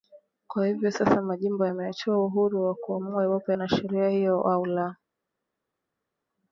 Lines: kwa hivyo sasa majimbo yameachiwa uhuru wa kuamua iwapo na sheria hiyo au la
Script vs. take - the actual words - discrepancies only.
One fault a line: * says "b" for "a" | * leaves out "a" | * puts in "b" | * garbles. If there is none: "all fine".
all fine